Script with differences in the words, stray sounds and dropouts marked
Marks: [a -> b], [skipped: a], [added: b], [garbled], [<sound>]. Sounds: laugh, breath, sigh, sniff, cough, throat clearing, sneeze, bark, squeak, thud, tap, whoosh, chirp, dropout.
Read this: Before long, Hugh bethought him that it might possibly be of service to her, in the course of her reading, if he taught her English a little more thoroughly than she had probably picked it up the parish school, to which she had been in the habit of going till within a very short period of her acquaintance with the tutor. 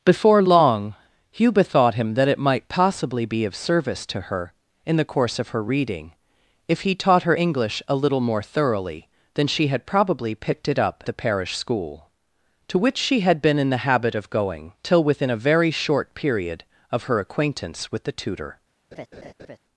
Before long, Hugh bethought him that it might possibly be of service to her, in the course of her reading, if he taught her English a little more thoroughly than she had probably picked it up the parish school, to which she had been in the habit of going till within a very short period of her acquaintance with the tutor. [laugh]